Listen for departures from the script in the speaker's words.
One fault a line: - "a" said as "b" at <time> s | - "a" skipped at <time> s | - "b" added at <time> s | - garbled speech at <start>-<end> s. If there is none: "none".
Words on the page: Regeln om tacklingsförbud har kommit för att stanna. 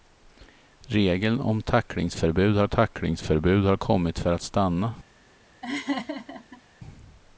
- "tacklingsförbud har" added at 2.7 s